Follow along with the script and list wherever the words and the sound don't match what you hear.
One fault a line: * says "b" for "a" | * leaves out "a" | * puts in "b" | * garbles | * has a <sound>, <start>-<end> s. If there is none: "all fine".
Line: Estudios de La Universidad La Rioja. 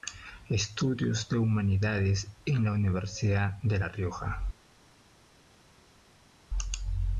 * puts in "Humanidades en"
* puts in "de"